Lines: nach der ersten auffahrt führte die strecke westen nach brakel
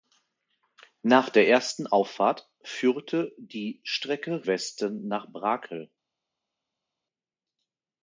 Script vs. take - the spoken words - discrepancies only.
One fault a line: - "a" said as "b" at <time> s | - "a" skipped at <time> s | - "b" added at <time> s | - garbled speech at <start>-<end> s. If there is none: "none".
none